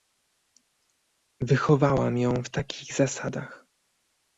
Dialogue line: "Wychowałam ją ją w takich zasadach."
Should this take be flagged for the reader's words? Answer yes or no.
yes